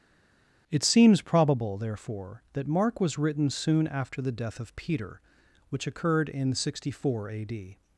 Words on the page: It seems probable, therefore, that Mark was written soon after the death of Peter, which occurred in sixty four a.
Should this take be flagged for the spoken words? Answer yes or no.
yes